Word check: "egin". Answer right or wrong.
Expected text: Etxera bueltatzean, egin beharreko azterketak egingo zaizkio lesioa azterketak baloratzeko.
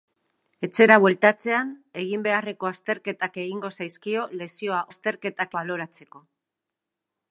right